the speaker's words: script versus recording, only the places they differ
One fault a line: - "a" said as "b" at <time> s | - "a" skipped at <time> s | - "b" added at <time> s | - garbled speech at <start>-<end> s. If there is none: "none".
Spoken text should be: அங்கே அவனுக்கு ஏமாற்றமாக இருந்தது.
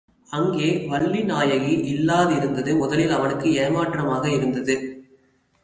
- "வள்ளிநாயகி இல்லாதிருந்தது முதலில்" added at 0.9 s